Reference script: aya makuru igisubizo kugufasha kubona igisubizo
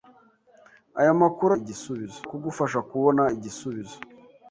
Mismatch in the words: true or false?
false